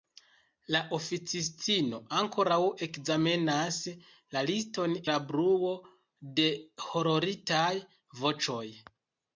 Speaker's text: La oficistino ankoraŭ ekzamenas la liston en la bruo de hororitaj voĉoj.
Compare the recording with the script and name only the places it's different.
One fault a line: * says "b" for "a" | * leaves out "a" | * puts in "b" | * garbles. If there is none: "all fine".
* leaves out "en"